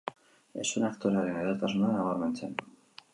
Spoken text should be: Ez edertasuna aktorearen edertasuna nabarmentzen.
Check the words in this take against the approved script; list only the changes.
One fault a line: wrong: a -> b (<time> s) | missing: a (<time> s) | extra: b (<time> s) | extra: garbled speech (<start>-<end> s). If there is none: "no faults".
wrong: edertasuna -> zuen (0.7 s)